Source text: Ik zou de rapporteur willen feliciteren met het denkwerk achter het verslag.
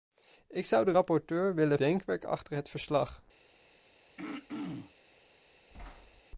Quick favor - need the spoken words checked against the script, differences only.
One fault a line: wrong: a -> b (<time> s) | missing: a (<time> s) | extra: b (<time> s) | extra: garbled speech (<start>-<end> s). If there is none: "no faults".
missing: feliciteren met het (1.8 s)